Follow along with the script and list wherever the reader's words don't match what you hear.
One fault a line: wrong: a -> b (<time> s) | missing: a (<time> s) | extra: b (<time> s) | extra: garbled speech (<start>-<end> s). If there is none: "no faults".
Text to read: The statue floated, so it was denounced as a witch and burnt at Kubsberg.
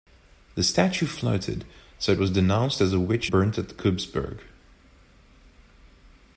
missing: and (3.3 s)